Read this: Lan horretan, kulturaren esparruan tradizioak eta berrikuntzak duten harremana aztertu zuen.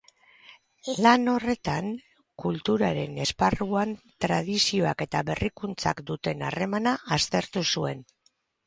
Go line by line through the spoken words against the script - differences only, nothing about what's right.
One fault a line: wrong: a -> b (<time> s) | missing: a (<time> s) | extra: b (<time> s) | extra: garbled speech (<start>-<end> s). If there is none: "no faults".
no faults